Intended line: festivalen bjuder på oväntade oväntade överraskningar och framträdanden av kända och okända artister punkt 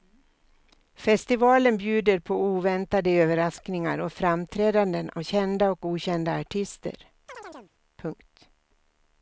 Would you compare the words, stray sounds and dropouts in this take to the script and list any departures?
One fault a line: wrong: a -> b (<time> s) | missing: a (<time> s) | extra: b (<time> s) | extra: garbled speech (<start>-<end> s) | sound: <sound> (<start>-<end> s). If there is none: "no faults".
missing: oväntade (3.1 s)
sound: chirp (7.3-7.7 s)